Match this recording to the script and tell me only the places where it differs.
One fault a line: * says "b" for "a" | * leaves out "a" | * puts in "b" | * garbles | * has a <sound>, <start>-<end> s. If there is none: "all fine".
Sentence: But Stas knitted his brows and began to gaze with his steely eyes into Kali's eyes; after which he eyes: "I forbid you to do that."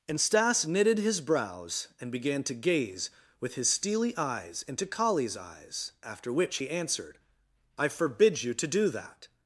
* says "And" for "But"
* says "answered" for "eyes"